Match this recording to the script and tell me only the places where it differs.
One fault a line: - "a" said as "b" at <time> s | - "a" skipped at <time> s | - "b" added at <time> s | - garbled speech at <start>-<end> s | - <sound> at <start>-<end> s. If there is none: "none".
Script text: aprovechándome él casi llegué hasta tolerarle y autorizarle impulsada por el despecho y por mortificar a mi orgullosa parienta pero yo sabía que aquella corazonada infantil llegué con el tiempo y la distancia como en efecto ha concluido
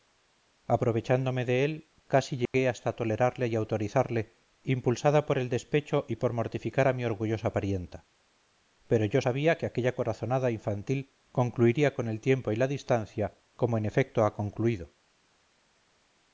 - "de" added at 1.4 s
- dropout at 2.5-2.5 s
- "llegué" said as "concluiría" at 11.3 s